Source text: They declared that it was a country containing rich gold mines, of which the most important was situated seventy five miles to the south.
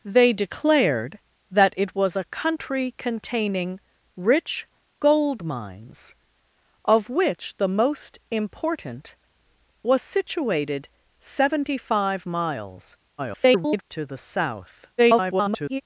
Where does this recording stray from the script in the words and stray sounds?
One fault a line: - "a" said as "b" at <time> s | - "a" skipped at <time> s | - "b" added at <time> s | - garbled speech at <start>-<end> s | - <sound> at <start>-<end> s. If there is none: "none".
- garbled speech at 13.2-13.8 s
- garbled speech at 15.0-15.8 s